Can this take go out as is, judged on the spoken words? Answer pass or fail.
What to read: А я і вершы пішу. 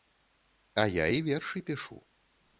pass